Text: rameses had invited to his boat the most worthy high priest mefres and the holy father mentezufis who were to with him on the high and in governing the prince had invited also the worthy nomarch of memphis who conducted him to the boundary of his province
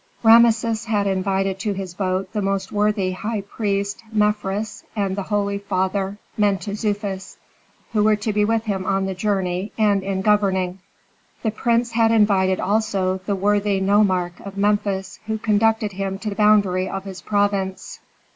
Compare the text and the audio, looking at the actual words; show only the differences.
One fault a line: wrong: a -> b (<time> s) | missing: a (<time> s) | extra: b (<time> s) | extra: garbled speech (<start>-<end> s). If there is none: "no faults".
extra: be (8.3 s)
wrong: high -> journey (9.1 s)